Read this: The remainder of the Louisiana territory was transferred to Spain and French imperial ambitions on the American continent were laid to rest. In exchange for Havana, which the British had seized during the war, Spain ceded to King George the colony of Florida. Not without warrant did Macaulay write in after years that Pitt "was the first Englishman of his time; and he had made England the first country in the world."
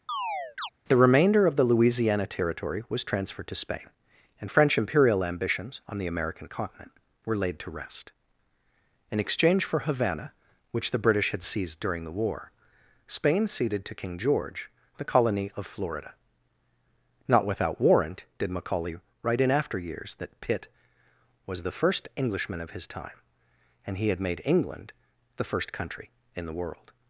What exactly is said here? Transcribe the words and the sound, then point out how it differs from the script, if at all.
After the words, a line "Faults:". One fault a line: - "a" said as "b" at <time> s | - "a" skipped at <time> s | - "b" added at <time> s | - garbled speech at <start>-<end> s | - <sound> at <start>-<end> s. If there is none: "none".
The remainder of the Louisiana territory was transferred to Spain and French imperial ambitions on the American continent were laid to rest. In exchange for Havana, which the British had seized during the war, Spain ceded to King George the colony of Florida. Not without warrant did Macaulay write in after years that Pitt "was the first Englishman of his time; and he had made England the first country in the world."
Faults:
- chirp at 0.1-0.7 s